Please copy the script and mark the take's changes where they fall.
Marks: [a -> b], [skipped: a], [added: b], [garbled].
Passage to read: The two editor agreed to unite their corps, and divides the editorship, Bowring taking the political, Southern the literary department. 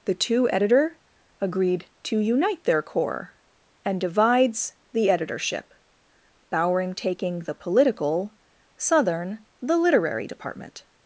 The two editor agreed to unite their corps, and divides the editorship, Bowring taking the political, Southern the literary department.